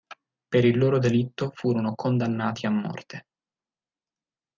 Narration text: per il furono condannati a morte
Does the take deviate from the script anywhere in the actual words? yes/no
yes